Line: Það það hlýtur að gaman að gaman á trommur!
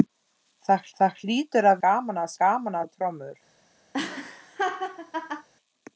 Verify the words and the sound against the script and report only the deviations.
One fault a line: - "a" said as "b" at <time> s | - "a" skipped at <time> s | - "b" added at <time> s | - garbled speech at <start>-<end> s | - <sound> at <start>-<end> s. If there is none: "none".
- laugh at 3.9-5.5 s